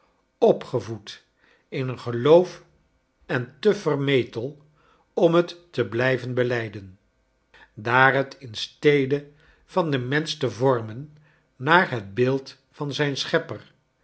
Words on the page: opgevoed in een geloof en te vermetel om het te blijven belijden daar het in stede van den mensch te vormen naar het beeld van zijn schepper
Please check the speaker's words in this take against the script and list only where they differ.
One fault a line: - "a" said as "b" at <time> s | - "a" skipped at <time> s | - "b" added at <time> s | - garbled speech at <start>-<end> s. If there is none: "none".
none